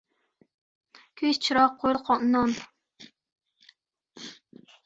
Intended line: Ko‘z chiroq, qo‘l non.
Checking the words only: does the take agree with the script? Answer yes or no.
yes